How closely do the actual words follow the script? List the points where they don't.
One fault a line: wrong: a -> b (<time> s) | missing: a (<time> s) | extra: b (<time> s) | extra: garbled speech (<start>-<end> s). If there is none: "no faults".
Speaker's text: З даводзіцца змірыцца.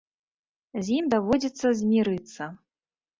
extra: ім (1.0 s)